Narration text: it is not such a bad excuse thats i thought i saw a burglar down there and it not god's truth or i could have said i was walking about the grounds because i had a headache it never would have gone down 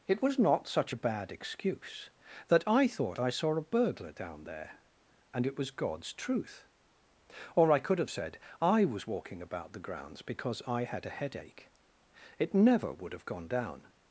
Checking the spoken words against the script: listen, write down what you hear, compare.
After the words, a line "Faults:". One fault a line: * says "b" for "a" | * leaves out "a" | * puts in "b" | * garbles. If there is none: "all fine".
it was not such a bad excuse that i thought i saw a burglar down there and it was god's truth or i could have said i was walking about the grounds because i had a headache it never would have gone down
Faults:
* says "was" for "is"
* says "that" for "thats"
* says "was" for "not"